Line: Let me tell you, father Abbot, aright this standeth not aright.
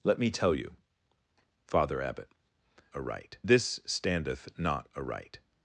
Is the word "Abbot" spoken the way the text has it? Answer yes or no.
yes